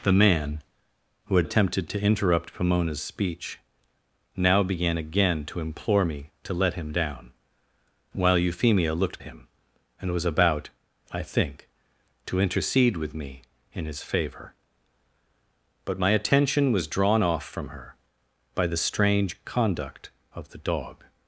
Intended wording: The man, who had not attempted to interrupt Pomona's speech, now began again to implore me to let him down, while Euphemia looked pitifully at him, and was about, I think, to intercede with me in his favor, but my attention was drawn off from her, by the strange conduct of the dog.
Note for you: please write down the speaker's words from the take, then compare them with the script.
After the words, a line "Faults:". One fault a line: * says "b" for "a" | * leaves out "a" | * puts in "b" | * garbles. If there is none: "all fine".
The man, who had attempted to interrupt Pomona's speech, now began again to implore me to let him down, while Euphemia looked him, and was about, I think, to intercede with me in his favor, but my attention was drawn off from her, by the strange conduct of the dog.
Faults:
* leaves out "not"
* leaves out "pitifully at"